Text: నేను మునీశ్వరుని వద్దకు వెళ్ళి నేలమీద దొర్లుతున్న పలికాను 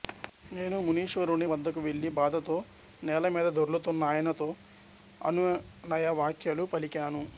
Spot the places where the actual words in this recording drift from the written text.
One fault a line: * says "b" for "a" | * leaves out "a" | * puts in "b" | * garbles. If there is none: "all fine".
* puts in "బాధతో"
* puts in "ఆయనతో అనునయ వాక్యాలు"